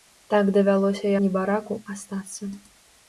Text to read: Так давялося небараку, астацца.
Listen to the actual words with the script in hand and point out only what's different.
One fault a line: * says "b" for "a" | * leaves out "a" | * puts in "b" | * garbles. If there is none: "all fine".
all fine